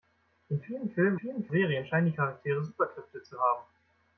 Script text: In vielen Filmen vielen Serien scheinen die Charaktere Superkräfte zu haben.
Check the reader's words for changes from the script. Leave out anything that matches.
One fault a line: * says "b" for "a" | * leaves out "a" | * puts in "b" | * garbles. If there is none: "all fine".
all fine